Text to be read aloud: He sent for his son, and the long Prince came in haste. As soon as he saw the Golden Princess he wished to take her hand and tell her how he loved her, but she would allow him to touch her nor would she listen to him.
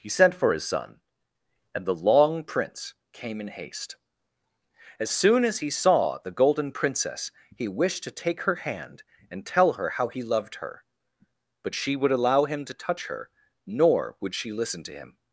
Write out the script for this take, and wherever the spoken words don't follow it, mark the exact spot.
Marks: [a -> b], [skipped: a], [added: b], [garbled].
He sent for his son, and the long Prince came in haste. As soon as he saw the Golden Princess he wished to take her hand and tell her how he loved her, but she would allow him to touch her nor would she listen to him.